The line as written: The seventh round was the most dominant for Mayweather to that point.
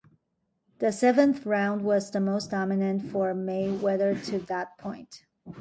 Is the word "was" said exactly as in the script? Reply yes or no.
yes